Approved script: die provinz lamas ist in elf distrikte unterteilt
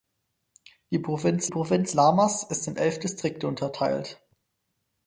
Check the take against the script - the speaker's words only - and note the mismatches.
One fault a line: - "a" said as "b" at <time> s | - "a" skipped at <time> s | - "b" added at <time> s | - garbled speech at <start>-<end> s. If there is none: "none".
- "provinz" added at 1.5 s